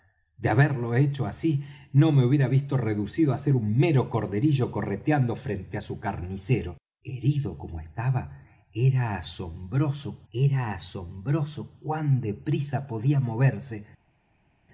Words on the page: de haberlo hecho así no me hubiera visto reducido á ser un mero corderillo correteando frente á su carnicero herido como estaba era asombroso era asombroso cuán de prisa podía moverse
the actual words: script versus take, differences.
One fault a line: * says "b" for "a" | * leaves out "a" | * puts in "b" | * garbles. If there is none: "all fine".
all fine